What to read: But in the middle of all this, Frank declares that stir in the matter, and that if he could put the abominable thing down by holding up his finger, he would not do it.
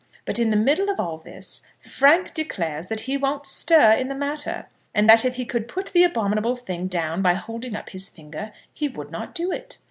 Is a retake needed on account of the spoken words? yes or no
yes